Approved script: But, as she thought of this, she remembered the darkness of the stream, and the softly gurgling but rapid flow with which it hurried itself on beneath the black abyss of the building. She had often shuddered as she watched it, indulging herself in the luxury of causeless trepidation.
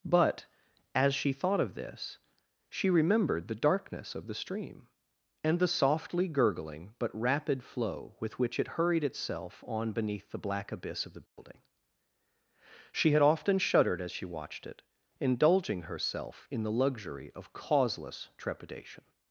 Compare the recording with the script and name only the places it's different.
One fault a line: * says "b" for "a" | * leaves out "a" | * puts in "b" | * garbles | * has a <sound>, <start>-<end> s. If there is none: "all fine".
* has a dropout, 11.3-11.4 s